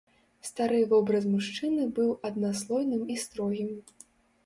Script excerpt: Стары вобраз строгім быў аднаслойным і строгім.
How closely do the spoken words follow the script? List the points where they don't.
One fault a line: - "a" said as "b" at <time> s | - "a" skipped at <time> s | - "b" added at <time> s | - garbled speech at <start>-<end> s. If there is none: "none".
- "строгім" said as "мужчыны" at 1.4 s